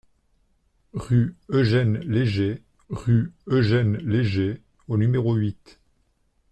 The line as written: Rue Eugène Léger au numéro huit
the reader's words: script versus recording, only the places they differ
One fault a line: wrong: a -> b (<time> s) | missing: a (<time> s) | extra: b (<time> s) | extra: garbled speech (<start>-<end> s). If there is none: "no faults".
extra: rue Eugène Léger (2.9 s)